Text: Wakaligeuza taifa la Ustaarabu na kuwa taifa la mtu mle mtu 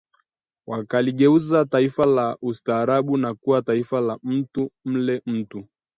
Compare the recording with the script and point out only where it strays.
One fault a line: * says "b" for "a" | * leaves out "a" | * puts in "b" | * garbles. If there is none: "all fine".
all fine